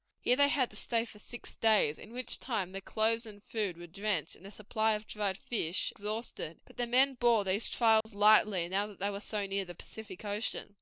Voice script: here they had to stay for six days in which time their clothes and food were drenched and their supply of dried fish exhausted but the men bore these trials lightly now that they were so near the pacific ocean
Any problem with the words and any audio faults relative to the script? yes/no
yes